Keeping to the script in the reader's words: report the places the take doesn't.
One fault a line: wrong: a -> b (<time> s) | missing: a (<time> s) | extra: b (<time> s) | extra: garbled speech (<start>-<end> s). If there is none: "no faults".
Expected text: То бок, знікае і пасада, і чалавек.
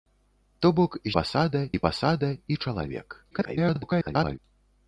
wrong: знікае -> пасада (1.2 s)
extra: garbled speech (3.3-4.4 s)